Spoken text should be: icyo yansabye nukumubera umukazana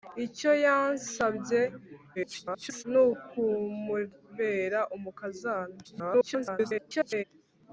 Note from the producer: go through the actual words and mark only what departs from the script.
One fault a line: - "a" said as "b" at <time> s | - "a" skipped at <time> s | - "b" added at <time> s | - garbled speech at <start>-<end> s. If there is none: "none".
- garbled speech at 2.2-2.8 s
- garbled speech at 5.8-7.2 s